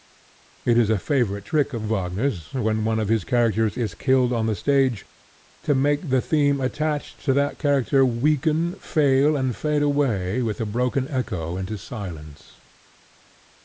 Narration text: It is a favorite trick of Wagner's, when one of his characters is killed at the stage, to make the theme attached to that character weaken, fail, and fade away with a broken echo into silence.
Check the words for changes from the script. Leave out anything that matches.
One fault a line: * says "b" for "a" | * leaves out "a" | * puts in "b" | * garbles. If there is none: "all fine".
* says "on" for "at"